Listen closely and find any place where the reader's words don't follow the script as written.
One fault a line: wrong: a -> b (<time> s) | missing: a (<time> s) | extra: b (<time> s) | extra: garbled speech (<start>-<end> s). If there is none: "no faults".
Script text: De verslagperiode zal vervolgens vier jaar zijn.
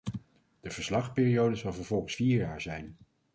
no faults